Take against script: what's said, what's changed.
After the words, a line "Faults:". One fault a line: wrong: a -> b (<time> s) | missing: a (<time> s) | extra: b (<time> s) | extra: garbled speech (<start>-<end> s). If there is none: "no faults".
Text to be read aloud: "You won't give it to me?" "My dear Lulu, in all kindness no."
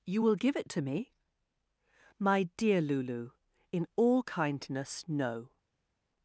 "You will give it to me?" "My dear Lulu, in all kindness no."
Faults:
wrong: won't -> will (0.2 s)